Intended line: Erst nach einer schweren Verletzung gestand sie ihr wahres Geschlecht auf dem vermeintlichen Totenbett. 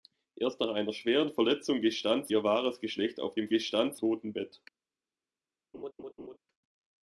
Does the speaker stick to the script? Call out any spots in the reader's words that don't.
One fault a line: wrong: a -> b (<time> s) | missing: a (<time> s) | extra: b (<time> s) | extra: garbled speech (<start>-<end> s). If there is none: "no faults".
missing: sie (2.3 s)
wrong: vermeintlichen -> gestand (3.5 s)